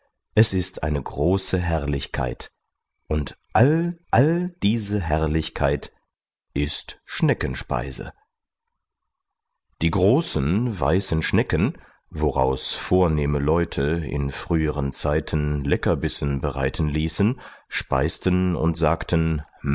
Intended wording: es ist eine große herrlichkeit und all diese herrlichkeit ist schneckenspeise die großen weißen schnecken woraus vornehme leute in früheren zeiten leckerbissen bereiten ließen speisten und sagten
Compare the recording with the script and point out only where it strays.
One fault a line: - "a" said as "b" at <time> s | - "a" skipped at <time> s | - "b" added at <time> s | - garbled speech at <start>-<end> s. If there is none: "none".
- "all" added at 4.1 s